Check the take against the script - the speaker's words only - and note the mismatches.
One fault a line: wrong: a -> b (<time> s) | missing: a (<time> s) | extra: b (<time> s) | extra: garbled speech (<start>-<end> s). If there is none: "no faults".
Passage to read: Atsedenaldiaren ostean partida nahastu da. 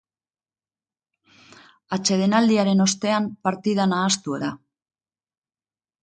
no faults